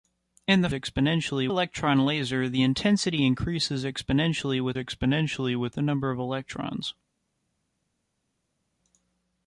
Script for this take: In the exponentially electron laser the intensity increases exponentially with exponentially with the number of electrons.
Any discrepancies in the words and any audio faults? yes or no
no